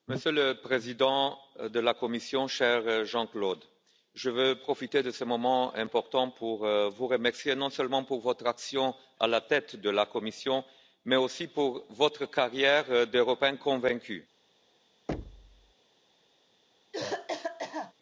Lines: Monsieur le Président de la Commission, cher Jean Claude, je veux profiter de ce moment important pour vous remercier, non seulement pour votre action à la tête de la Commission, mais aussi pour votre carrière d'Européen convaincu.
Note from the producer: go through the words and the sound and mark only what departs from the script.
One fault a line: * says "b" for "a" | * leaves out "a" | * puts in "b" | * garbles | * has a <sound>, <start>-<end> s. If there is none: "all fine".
* has a thud, 15.1-15.7 s
* has a cough, 16.9-17.9 s